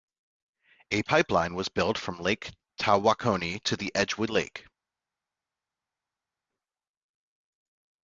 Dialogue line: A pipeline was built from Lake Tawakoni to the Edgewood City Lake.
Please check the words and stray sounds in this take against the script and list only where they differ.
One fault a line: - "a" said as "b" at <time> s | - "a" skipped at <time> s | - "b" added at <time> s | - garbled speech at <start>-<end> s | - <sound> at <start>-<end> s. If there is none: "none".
- "City" skipped at 4.3 s